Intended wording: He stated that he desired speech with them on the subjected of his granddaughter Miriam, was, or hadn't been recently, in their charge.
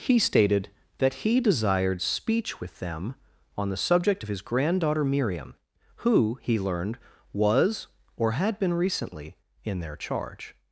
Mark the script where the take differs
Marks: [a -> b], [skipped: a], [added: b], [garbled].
He stated that he desired speech with them on the [subjected -> subject] of his granddaughter Miriam, [added: who he learned] was, or [hadn't -> had] been recently, in their charge.